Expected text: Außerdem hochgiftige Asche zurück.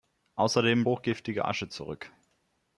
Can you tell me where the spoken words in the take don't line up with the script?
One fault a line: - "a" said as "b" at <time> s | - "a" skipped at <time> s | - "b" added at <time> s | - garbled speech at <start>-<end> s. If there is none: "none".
none